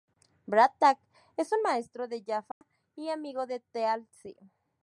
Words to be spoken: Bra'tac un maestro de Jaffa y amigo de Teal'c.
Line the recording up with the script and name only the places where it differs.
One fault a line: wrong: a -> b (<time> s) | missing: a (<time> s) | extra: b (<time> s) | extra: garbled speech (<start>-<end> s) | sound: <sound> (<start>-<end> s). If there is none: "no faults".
extra: es (1.3 s)
sound: dropout (2.5-2.6 s)